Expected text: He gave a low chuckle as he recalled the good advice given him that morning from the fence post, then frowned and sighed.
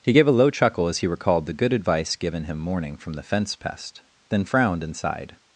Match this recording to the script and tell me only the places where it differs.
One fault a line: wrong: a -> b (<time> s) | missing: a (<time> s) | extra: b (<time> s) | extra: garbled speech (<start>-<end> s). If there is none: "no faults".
missing: that (2.6 s)
wrong: post -> pest (3.6 s)